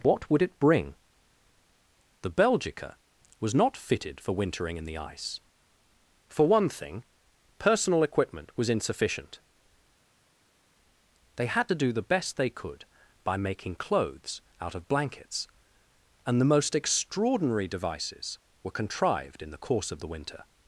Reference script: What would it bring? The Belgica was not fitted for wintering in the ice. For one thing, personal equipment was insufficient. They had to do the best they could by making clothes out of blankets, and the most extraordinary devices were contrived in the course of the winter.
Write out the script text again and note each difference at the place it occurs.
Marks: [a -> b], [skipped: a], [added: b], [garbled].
What would it bring? The Belgica was not fitted for wintering in the ice. For one thing, personal equipment was insufficient. They had to do the best they could by making clothes out of blankets, and the most extraordinary devices were contrived in the course of the winter.